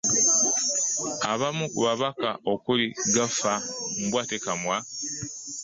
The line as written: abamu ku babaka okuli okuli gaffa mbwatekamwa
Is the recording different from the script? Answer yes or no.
yes